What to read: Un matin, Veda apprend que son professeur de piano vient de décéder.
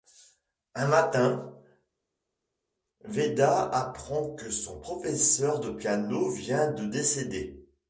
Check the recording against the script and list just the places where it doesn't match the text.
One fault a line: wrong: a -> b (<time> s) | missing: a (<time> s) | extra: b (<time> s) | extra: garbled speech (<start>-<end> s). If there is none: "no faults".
no faults